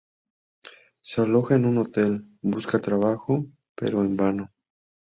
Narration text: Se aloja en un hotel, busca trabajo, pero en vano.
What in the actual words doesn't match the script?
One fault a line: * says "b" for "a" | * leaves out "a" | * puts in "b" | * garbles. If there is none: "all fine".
all fine